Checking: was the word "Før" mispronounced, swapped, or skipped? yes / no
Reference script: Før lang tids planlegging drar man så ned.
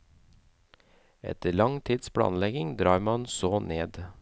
yes